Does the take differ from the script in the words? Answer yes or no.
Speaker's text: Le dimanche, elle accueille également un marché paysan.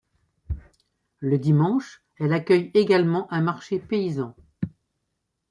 no